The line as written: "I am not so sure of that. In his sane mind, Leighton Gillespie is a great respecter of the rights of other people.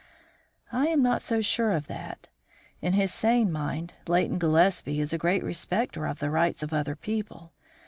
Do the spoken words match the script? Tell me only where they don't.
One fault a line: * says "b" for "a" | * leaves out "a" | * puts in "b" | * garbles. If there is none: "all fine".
all fine